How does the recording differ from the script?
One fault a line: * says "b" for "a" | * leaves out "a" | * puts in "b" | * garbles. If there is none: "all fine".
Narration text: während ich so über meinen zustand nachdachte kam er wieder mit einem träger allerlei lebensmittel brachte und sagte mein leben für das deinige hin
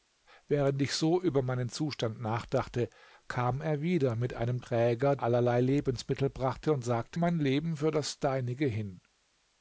all fine